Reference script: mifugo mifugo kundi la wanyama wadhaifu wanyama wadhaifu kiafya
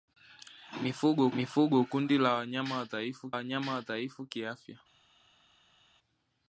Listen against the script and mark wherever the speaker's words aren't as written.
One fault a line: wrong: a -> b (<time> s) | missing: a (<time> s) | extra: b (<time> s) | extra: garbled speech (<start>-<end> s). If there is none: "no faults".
no faults